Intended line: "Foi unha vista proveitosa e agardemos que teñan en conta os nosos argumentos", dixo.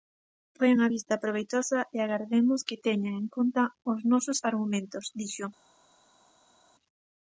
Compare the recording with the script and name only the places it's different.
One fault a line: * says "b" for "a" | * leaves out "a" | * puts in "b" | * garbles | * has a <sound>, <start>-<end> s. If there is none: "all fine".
all fine